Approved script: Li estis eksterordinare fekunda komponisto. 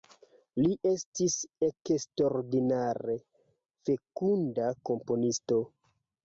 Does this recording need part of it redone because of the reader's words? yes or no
no